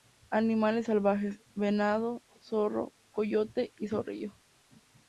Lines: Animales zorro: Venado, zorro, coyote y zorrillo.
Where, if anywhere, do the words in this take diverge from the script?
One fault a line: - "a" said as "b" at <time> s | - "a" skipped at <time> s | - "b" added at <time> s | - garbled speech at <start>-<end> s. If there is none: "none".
- "zorro" said as "salvajes" at 0.8 s